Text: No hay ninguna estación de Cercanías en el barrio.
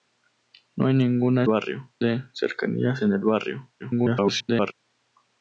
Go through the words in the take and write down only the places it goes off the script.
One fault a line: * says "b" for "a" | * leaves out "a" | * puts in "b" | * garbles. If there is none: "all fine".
* says "barrio" for "estación"
* garbles